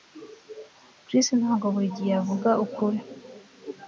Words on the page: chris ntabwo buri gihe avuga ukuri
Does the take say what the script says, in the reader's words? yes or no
yes